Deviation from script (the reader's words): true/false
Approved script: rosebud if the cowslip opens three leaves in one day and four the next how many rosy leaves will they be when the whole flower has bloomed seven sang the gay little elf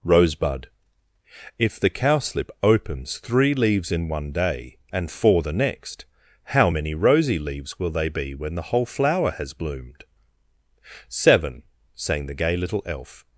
false